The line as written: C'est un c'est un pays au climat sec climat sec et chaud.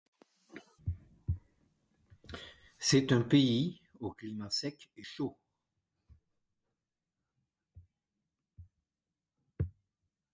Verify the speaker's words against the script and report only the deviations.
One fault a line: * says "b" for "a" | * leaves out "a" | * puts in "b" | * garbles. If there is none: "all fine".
* leaves out "c'est un"
* leaves out "climat sec"